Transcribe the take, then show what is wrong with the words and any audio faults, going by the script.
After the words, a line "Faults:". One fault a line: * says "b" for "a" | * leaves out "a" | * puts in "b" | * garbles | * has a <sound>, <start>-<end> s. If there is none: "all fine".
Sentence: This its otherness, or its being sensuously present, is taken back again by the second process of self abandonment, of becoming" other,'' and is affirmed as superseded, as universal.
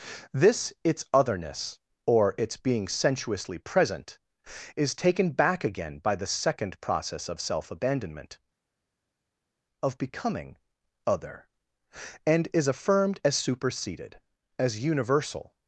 This its otherness, or its being sensuously present, is taken back again by the second process of self abandonment, of becoming" other,'' and is affirmed as superseded, as universal.
Faults:
all fine